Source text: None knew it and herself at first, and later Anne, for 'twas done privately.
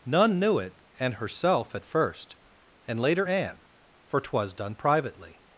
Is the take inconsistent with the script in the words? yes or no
no